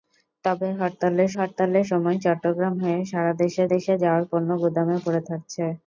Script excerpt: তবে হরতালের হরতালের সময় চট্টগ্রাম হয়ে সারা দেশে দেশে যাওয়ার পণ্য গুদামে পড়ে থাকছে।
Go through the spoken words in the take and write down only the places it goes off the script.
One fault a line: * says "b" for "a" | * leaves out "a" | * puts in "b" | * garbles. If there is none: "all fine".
all fine